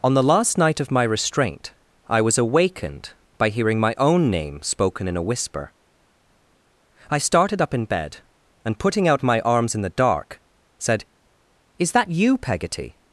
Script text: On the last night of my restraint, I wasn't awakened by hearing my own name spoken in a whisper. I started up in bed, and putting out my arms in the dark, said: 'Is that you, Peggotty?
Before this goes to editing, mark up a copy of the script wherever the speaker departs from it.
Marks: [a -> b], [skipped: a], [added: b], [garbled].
On the last night of my restraint, I [wasn't -> was] awakened by hearing my own name spoken in a whisper. I started up in bed, and putting out my arms in the dark, said: 'Is that you, Peggotty?